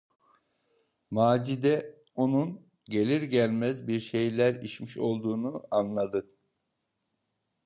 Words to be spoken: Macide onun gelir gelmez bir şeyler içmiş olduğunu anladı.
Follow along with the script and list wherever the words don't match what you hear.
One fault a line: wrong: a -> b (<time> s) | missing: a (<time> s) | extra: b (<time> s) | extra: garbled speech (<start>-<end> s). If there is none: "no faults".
no faults